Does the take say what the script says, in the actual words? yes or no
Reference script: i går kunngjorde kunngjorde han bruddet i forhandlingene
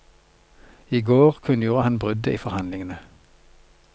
no